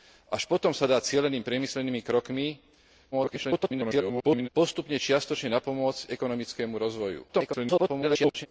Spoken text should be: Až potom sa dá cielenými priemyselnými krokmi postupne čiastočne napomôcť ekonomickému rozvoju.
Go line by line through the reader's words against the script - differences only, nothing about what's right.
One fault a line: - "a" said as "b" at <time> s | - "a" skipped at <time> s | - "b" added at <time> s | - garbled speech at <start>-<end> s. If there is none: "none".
- garbled speech at 3.1-4.5 s
- garbled speech at 7.3-8.5 s